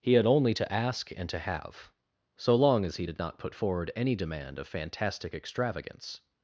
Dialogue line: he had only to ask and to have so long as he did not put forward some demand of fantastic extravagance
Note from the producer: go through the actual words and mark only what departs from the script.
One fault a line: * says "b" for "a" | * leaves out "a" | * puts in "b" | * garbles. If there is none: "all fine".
* says "any" for "some"